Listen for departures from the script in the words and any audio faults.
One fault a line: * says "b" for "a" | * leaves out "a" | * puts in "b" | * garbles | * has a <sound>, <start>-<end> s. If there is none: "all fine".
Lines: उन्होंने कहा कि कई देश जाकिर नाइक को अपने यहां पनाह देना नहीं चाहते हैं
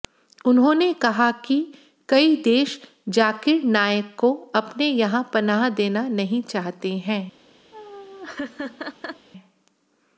* has a laugh, 7.7-9.3 s